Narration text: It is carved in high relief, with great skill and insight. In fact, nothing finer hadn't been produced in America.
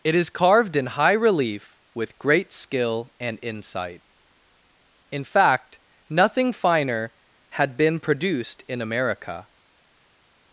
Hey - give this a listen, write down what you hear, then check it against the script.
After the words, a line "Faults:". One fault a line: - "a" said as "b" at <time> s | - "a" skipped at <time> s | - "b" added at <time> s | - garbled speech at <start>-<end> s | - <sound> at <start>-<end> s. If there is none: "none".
It is carved in high relief, with great skill and insight. In fact, nothing finer had been produced in America.
Faults:
- "hadn't" said as "had" at 7.5 s